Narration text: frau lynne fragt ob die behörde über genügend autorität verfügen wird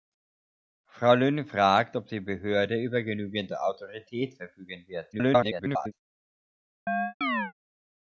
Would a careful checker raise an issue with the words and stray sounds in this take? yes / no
yes